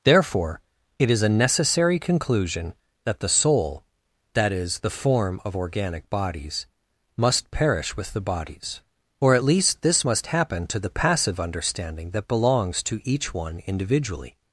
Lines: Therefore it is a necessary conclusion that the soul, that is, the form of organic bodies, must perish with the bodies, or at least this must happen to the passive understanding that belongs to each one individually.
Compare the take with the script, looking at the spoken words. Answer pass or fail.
pass